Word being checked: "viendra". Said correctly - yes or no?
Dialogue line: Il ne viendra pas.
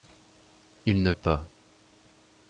no